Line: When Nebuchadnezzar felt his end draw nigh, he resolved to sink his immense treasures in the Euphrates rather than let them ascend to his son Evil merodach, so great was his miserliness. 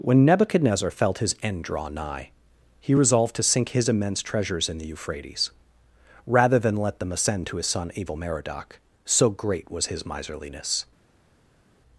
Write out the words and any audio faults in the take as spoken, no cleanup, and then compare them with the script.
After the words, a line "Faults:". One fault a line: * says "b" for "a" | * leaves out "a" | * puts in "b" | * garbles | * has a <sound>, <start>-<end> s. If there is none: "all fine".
When Nebuchadnezzar felt his end draw nigh, he resolved to sink his immense treasures in the Euphrates rather than let them ascend to his son Evil merodach, so great was his miserliness.
Faults:
all fine